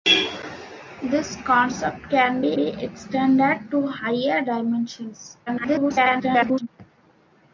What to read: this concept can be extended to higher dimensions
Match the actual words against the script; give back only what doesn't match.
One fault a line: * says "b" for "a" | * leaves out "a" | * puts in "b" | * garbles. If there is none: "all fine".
* puts in "be"
* garbles